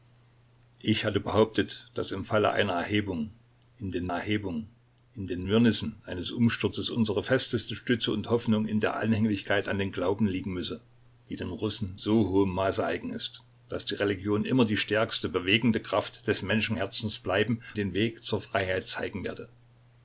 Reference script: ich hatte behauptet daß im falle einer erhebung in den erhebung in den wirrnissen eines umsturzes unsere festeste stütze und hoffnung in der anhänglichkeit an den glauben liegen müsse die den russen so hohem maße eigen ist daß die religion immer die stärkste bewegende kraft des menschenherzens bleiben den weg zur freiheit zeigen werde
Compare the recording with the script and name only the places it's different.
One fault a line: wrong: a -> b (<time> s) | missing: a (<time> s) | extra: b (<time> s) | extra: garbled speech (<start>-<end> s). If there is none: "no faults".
no faults